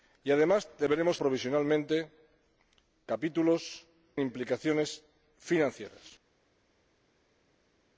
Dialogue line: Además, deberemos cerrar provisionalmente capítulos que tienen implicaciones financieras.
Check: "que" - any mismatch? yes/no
yes